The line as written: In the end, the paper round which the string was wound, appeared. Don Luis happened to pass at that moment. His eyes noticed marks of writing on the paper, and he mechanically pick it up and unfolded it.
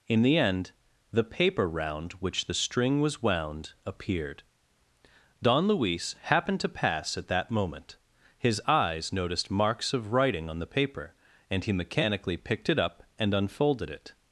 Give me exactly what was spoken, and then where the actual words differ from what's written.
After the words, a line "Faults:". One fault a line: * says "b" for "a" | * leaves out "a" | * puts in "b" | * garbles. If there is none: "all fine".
In the end, the paper round which the string was wound, appeared. Don Luis happened to pass at that moment. His eyes noticed marks of writing on the paper, and he mechanically picked it up and unfolded it.
Faults:
* says "picked" for "pick"